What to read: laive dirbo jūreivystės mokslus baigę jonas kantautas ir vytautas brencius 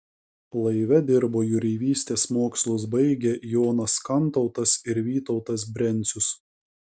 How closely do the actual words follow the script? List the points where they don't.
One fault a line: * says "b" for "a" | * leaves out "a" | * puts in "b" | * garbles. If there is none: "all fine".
all fine